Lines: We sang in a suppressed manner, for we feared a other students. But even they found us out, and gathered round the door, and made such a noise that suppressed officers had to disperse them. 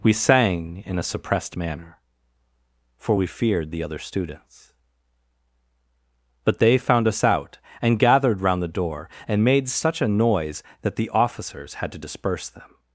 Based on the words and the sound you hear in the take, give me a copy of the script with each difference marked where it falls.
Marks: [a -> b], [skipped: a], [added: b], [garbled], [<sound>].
We sang in a suppressed manner, for we feared [a -> the] other students. But [skipped: even] they found us out, and gathered round the door, and made such a noise that [suppressed -> the] officers had to disperse them.